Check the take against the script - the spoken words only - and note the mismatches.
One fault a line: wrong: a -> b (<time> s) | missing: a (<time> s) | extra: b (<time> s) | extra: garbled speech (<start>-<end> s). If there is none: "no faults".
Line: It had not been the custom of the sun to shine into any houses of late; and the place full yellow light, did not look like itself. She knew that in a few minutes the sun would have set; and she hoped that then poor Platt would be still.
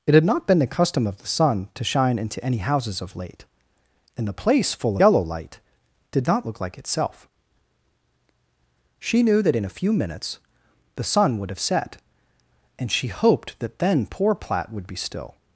no faults